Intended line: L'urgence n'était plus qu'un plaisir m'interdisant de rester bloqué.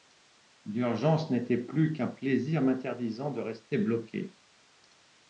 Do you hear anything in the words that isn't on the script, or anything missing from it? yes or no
no